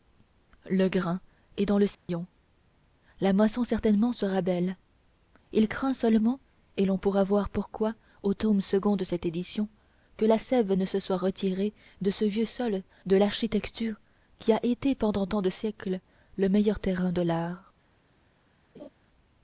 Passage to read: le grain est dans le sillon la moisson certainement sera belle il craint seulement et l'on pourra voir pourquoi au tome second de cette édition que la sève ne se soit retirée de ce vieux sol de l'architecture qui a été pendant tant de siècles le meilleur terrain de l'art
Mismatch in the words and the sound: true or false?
true